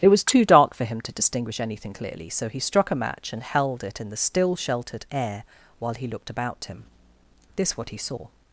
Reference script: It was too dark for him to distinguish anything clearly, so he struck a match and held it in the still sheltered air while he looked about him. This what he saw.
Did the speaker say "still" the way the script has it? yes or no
yes